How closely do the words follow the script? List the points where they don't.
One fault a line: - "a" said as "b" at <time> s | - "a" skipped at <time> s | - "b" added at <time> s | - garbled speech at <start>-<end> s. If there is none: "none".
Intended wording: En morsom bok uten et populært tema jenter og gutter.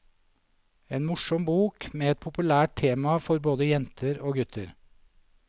- "uten" said as "med" at 1.9 s
- "for både" added at 3.3 s